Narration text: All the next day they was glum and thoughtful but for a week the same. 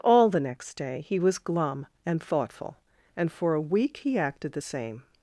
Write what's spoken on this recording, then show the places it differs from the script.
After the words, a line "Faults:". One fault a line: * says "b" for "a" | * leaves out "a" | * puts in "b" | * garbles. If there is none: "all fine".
All the next day he was glum and thoughtful and for a week he acted the same.
Faults:
* says "he" for "they"
* says "and" for "but"
* puts in "he acted"